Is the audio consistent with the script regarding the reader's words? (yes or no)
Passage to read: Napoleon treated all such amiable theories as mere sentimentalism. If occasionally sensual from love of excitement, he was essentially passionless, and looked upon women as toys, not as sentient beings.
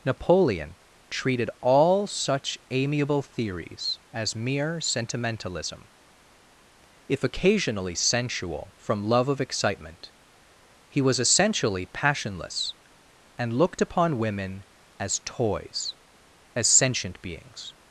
no